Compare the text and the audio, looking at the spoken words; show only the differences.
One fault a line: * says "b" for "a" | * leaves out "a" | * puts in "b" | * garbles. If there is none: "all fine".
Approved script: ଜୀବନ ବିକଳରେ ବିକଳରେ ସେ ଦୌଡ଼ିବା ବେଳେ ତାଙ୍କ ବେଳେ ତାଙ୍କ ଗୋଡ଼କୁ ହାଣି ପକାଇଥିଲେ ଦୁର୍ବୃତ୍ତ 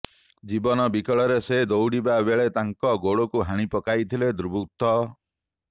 * leaves out "ବିକଳରେ"
* leaves out "ବେଳେ ତାଙ୍କ"